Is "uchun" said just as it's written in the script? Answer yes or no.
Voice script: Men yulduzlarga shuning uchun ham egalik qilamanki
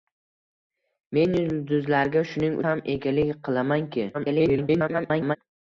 no